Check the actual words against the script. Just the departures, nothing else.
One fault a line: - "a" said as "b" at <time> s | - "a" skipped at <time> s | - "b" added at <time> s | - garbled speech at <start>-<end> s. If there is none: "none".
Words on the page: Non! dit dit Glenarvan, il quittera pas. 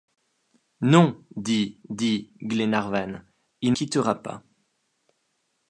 none